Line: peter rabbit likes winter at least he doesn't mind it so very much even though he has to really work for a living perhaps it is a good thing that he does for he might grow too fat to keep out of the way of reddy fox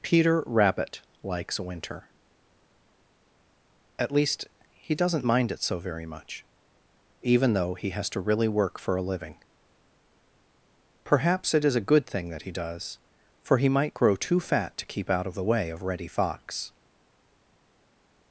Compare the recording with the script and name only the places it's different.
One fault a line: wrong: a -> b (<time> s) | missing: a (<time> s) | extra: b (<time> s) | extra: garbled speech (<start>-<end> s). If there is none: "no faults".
no faults